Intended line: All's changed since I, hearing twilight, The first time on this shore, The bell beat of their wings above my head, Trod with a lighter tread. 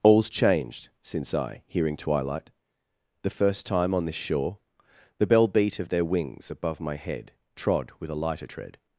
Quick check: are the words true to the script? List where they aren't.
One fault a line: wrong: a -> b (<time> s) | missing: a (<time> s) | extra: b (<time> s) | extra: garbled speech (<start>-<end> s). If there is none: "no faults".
no faults